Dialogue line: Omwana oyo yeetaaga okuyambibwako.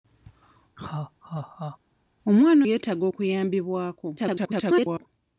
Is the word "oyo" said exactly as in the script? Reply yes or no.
no